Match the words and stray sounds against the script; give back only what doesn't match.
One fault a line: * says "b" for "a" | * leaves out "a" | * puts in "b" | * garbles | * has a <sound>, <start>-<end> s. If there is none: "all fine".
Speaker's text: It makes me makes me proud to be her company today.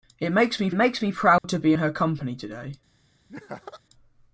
* has a dropout, 1.4-1.4 s
* has a laugh, 3.3-3.8 s